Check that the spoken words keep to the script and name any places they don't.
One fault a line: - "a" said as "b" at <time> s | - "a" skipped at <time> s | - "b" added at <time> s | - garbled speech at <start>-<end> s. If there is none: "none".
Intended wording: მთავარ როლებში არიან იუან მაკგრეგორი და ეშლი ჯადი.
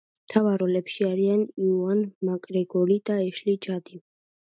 none